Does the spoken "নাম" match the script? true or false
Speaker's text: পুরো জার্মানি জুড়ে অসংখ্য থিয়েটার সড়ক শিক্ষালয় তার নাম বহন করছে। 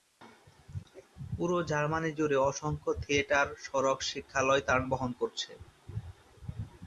false